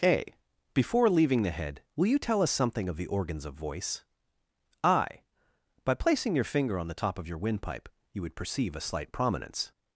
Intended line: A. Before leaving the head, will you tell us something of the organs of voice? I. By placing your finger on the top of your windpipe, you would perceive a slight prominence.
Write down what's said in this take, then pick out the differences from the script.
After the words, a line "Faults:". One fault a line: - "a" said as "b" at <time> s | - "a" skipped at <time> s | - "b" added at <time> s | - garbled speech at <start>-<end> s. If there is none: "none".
A. Before leaving the head, will you tell us something of the organs of voice? I. By placing your finger on the top of your windpipe, you would perceive a slight prominence.
Faults:
none